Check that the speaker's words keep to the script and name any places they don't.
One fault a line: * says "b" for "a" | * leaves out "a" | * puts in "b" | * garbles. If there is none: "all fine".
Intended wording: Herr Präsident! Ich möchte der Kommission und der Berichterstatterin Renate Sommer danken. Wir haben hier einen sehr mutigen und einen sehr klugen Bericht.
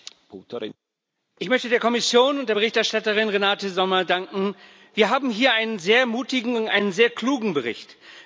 all fine